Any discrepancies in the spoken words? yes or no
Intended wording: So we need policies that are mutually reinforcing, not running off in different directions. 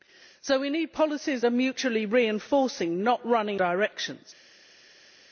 yes